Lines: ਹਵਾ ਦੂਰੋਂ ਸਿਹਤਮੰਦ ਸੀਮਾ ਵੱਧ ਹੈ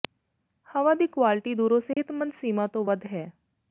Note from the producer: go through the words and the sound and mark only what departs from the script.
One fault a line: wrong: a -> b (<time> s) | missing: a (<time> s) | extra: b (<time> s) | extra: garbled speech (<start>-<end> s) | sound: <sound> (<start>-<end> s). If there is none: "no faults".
extra: ਦੀ ਕੁਆਲਟੀ (0.9 s)
sound: dropout (1.9-2.0 s)
extra: ਤੋਂ (2.7 s)